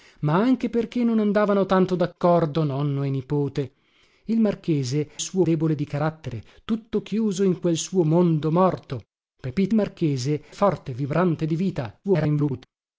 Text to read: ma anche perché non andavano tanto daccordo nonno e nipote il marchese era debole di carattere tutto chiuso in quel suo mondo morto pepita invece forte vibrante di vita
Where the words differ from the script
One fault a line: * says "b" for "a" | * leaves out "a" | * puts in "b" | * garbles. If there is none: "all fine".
* says "suo" for "era"
* says "marchese" for "invece"
* garbles